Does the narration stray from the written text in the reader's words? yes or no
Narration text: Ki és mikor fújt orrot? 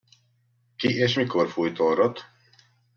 no